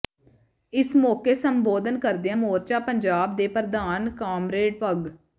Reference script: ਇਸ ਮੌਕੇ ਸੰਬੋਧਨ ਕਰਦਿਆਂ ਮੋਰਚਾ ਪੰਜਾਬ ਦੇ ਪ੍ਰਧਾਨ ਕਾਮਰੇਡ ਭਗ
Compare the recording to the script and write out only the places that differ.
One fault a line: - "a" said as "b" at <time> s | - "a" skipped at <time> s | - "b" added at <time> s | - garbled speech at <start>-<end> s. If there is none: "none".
none